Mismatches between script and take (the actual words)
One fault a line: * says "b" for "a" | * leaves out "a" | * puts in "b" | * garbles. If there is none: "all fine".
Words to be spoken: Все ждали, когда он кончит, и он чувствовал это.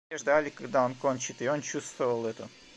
all fine